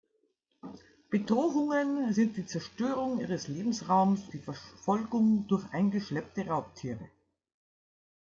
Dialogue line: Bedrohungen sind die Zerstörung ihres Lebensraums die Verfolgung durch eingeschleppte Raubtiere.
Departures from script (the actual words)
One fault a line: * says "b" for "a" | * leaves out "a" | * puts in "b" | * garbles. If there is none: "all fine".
all fine